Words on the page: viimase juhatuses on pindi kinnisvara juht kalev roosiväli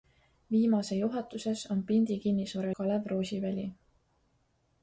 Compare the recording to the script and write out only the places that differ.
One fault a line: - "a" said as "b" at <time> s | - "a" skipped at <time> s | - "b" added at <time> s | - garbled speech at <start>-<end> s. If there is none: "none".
- "juht" skipped at 2.7 s